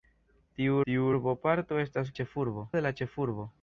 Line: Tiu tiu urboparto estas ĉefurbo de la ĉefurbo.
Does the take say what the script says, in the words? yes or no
yes